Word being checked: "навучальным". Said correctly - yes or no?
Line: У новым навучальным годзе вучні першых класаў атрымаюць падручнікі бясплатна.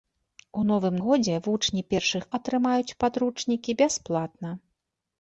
no